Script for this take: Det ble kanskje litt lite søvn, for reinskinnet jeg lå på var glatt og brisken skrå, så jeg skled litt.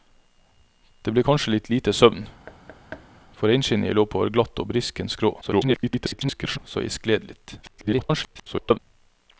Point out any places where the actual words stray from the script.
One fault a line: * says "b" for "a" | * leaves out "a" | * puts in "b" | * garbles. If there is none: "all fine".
* garbles
* garbles